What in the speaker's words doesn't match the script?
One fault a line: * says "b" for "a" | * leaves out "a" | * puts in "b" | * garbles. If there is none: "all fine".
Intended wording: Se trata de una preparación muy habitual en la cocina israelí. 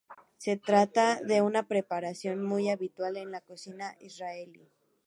all fine